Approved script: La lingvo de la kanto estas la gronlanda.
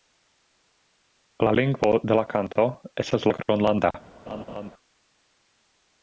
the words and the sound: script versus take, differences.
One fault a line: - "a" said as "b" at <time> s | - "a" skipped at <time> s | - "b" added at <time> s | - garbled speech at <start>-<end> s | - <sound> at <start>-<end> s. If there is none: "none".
- laugh at 4.3-4.7 s